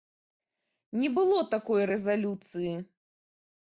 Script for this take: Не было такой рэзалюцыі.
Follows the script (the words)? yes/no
yes